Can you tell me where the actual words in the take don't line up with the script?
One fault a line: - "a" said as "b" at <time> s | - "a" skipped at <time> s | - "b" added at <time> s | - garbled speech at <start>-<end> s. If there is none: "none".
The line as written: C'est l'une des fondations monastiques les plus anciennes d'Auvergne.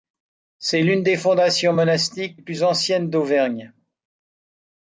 - "les" skipped at 2.4 s